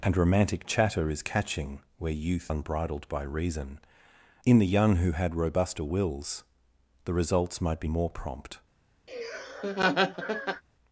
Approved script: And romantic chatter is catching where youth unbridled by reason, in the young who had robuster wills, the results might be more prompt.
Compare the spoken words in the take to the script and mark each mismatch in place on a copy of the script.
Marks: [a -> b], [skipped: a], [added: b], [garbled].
And romantic chatter is catching where youth unbridled by reason, in the young who had robuster wills, the results might be more prompt.